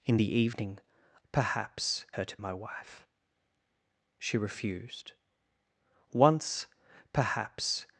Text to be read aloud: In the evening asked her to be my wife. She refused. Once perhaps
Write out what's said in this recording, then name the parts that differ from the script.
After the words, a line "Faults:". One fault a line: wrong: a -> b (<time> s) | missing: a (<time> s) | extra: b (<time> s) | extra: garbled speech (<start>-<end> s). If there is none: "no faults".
In the evening perhaps her to my wife. She refused. Once perhaps
Faults:
wrong: asked -> perhaps (1.3 s)
missing: be (2.4 s)